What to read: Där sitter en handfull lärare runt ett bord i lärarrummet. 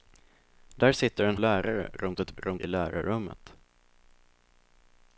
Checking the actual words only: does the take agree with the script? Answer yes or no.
no